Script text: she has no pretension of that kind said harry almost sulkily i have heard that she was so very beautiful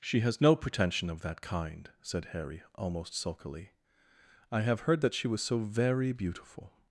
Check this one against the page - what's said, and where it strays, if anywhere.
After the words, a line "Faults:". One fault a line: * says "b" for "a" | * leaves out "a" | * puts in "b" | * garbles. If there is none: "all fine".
she has no pretension of that kind said harry almost sulkily i have heard that she was so very beautiful
Faults:
all fine